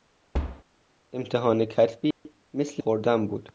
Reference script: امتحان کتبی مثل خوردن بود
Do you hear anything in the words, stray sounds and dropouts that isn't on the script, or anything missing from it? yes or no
yes